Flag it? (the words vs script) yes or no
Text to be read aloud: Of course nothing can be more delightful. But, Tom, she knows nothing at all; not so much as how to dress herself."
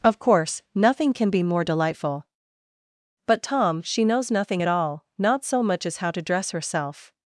no